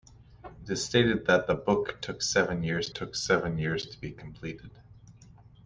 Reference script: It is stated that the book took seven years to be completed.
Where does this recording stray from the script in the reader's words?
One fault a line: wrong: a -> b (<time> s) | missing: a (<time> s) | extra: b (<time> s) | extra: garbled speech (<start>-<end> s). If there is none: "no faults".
extra: took seven years (2.9 s)